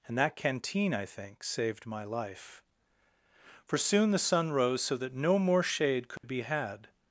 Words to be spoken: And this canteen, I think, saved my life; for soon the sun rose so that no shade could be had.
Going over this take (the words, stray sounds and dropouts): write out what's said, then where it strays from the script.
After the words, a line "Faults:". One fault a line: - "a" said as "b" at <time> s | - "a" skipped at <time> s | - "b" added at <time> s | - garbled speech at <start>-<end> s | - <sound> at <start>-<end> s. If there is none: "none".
And that canteen, I think, saved my life; for soon the sun rose so that no more shade could be had.
Faults:
- "this" said as "that" at 0.2 s
- "more" added at 5.4 s
- dropout at 6.2-6.2 s